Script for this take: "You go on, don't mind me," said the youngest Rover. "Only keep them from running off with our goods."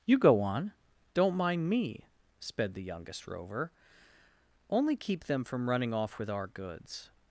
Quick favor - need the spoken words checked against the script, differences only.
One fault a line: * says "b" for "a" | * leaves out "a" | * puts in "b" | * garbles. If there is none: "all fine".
* says "sped" for "said"